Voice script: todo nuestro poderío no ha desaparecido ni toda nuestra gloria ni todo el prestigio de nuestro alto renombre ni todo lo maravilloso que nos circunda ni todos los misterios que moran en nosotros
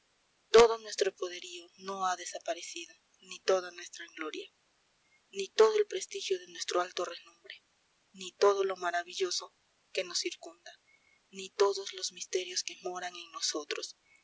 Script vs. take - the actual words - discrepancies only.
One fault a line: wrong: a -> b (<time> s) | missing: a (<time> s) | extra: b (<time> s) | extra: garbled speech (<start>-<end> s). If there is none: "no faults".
no faults